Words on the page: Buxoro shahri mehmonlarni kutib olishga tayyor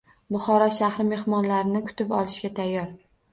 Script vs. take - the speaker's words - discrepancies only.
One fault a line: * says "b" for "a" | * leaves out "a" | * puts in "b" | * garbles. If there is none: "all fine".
all fine